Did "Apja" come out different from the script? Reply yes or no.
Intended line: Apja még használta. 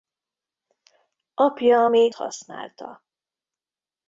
no